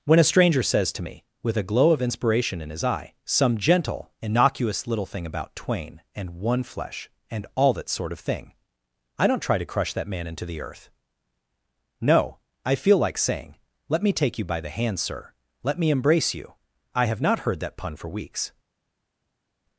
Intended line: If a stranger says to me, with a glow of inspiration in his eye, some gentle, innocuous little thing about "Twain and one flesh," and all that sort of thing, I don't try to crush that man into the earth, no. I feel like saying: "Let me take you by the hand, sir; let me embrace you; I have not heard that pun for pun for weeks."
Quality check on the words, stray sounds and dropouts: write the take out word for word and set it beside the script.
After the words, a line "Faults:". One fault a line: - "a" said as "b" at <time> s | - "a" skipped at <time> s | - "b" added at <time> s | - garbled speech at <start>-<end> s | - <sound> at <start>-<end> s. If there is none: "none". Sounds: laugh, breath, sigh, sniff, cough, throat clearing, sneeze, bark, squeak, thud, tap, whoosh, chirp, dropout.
When a stranger says to me, with a glow of inspiration in his eye, some gentle, innocuous little thing about "Twain and one flesh," and all that sort of thing, I don't try to crush that man into the earth, no. I feel like saying: "Let me take you by the hand, sir; let me embrace you; I have not heard that pun for weeks."
Faults:
- "If" said as "When" at 0.0 s
- "pun for" skipped at 18.1 s